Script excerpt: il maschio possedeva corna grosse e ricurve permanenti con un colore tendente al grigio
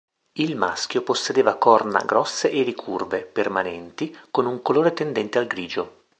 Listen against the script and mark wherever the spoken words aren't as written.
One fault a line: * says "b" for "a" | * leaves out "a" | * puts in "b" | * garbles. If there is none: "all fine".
all fine